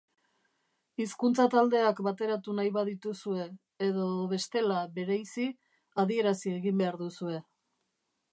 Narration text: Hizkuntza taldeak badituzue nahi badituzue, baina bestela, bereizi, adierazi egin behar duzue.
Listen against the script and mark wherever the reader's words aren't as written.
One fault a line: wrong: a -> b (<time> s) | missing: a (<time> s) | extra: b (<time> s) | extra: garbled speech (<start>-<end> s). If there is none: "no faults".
wrong: badituzue -> bateratu (2.1 s)
wrong: baina -> edo (3.9 s)